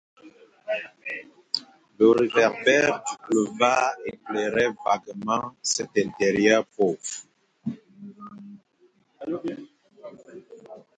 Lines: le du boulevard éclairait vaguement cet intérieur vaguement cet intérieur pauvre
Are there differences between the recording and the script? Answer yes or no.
yes